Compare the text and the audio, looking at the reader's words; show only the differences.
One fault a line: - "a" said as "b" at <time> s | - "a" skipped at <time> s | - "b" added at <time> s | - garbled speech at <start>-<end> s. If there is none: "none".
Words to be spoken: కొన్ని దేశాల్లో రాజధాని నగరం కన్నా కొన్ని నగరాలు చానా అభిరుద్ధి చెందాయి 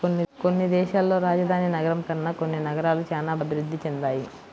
none